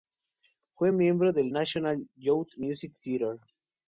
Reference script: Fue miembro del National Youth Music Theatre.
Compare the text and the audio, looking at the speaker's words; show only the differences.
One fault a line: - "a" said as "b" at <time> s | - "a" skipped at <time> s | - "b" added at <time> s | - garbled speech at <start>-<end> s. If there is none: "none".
none